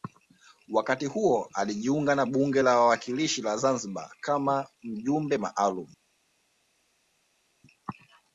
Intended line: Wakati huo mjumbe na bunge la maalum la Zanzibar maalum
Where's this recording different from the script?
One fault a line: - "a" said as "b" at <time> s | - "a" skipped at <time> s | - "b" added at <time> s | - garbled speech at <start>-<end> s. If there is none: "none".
- "mjumbe" said as "alijiunga" at 1.5 s
- "maalum" said as "wawakilishi" at 2.8 s
- "kama mjumbe" added at 4.2 s